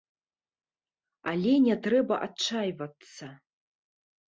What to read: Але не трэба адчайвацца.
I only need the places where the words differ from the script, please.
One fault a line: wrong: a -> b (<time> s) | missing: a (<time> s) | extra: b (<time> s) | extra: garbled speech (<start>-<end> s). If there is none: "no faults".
no faults